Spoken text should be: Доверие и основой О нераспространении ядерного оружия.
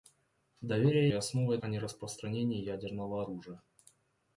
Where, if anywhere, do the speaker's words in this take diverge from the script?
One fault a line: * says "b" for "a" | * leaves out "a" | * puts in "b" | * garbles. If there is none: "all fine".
all fine